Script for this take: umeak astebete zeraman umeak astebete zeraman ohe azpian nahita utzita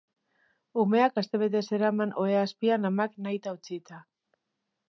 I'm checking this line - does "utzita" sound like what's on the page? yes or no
yes